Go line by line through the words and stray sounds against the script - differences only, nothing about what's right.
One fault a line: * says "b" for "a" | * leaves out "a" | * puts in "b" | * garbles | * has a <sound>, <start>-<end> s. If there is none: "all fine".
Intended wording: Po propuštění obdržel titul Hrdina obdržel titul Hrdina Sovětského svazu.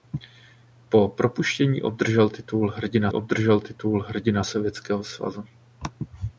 all fine